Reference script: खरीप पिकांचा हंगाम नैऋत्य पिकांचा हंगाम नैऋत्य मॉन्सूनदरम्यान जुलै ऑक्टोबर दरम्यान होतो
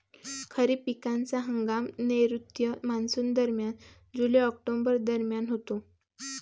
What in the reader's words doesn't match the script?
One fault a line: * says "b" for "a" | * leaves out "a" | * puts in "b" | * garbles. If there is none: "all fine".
* leaves out "पिकांचा हंगाम नैऋत्य"